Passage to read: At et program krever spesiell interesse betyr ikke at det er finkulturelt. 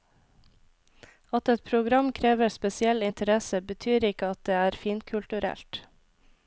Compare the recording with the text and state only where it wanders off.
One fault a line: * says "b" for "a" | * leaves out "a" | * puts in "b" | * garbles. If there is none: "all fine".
all fine